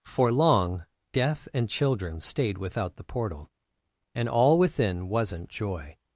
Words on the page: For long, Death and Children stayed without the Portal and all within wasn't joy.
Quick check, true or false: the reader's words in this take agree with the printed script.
true